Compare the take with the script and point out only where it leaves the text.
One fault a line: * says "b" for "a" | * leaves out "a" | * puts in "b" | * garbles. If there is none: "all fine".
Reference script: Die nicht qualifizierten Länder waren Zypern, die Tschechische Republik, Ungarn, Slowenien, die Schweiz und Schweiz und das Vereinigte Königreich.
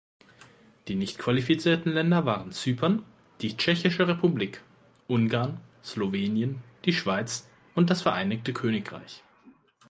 * leaves out "Schweiz und"